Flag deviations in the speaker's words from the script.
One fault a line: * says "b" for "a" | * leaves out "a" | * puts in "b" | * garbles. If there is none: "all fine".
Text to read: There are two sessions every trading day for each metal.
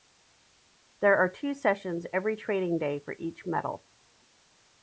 all fine